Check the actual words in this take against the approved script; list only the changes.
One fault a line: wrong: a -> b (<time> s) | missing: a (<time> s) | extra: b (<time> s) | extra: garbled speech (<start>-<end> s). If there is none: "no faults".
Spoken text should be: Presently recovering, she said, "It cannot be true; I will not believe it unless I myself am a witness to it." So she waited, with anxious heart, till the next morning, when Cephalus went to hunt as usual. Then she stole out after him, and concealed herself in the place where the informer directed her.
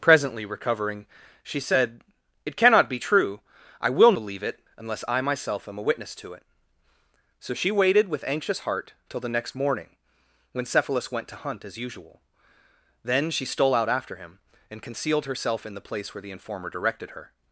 missing: not (4.1 s)